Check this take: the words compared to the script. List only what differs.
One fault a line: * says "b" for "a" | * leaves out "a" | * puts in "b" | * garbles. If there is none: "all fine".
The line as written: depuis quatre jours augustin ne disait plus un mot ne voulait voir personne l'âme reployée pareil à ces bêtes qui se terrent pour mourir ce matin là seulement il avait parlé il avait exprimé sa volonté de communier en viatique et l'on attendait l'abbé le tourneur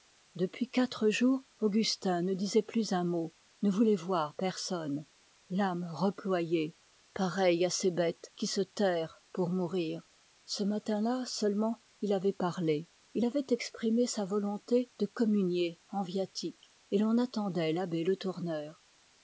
all fine